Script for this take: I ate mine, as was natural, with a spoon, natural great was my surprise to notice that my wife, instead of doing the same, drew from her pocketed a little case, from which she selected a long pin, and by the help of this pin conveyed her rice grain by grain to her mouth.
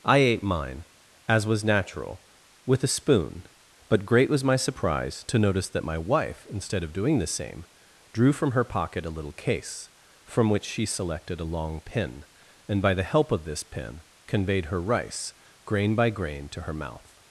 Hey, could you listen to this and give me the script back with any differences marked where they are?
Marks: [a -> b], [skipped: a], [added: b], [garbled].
I ate mine, as was natural, with a spoon, [natural -> but] great was my surprise to notice that my wife, instead of doing the same, drew from her [pocketed -> pocket] a little case, from which she selected a long pin, and by the help of this pin conveyed her rice grain by grain to her mouth.